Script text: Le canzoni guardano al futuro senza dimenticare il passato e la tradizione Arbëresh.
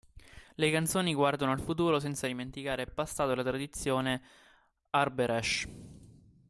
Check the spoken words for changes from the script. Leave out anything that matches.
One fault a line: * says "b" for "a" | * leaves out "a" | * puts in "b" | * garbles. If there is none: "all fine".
all fine